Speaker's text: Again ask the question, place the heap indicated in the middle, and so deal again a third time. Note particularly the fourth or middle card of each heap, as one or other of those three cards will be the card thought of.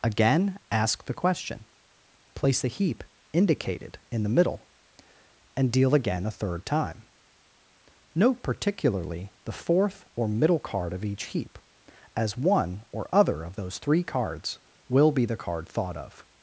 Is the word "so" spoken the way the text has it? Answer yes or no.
no